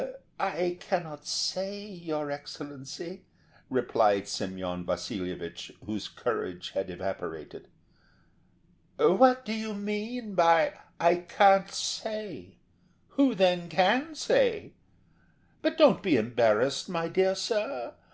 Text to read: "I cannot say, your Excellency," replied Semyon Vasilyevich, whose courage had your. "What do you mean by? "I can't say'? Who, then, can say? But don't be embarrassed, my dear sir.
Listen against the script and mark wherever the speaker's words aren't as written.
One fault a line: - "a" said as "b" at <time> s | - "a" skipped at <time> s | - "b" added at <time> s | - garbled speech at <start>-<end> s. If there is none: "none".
- "your" said as "evaporated" at 6.9 s